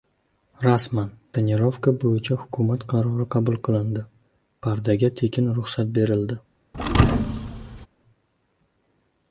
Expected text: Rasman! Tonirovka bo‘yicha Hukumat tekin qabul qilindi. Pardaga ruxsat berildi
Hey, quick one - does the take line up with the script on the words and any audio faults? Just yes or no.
no